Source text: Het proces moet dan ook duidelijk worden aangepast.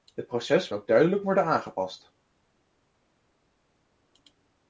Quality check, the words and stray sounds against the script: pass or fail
fail